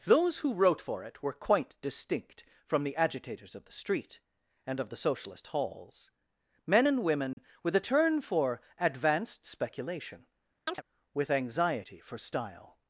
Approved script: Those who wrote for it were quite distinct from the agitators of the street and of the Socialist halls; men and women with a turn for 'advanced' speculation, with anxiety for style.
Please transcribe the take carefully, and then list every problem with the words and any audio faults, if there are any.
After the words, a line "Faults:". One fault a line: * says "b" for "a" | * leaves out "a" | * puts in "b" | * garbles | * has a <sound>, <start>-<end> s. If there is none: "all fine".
Those who wrote for it were quite distinct from the agitators of the street and of the Socialist halls; men and women with a turn for 'advanced' speculation, with anxiety for style.
Faults:
* has a dropout, 7.3-7.4 s
* has a chirp, 10.7-10.8 s